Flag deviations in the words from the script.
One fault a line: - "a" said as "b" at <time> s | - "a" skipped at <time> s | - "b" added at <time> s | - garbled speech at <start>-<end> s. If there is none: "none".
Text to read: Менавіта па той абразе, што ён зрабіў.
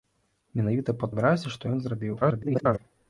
- "той" skipped at 1.1 s
- garbled speech at 2.2-2.8 s